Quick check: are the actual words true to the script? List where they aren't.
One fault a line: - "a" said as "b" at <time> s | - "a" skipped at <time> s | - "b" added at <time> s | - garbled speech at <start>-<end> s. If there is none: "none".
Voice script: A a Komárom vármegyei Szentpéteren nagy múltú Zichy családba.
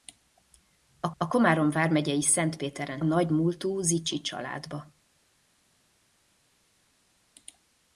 none